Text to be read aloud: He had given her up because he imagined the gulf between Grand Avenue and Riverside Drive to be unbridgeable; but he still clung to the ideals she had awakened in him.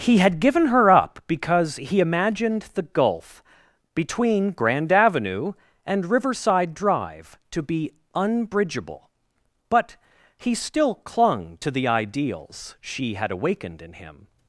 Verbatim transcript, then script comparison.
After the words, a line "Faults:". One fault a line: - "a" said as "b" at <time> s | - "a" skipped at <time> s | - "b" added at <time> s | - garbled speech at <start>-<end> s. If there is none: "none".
He had given her up because he imagined the gulf between Grand Avenue and Riverside Drive to be unbridgeable; but he still clung to the ideals she had awakened in him.
Faults:
none